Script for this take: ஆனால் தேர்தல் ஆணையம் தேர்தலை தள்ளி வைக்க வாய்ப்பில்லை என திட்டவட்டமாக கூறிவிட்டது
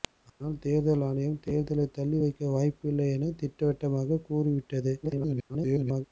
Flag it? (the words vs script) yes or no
yes